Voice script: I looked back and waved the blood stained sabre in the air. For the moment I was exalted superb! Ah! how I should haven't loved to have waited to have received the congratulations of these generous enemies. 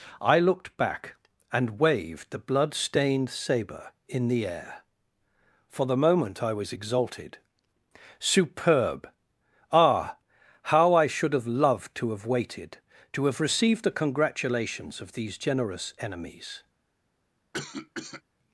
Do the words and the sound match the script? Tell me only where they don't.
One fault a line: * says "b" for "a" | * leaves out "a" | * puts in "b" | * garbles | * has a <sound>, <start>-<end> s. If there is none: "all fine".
* says "have" for "haven't"
* has a cough, 17.5-18.2 s